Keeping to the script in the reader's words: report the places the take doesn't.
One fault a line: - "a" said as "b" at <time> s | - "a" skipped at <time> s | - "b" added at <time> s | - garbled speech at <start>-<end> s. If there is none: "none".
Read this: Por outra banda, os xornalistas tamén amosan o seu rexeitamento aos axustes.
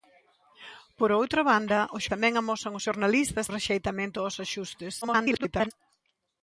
- "xornalistas" skipped at 2.0 s
- "seu" said as "xornalistas" at 2.9 s
- garbled speech at 5.0-5.7 s